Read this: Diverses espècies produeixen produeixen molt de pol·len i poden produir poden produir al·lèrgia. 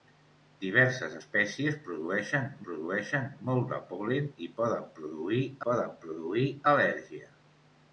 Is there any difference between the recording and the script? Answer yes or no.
no